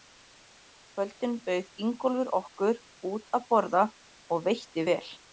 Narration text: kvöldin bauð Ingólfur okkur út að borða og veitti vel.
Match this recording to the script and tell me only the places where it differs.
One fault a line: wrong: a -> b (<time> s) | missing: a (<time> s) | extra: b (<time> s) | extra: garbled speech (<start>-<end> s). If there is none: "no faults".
no faults